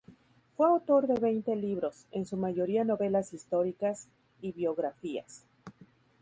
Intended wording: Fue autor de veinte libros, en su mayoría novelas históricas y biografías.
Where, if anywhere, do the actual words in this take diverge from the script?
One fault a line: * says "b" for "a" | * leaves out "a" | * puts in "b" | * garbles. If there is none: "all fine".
all fine